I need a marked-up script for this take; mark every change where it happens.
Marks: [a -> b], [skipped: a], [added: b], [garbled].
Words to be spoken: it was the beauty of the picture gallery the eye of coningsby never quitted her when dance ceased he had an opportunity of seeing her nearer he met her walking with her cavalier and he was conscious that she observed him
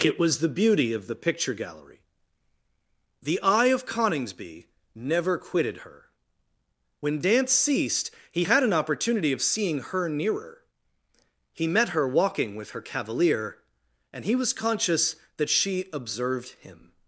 it was the beauty of the picture gallery the eye of coningsby never quitted her when dance ceased he had an opportunity of seeing her nearer he met her walking with her cavalier and he was conscious that she observed him